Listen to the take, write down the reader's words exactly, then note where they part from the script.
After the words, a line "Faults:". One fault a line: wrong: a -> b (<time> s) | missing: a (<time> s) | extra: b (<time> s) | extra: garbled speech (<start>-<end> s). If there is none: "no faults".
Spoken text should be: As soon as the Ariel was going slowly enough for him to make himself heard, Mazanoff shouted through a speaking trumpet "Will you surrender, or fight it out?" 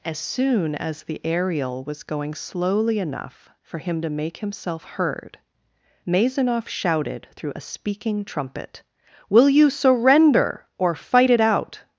As soon as the Ariel was going slowly enough for him to make himself heard, Mazanoff shouted through a speaking trumpet "Will you surrender, or fight it out?"
Faults:
no faults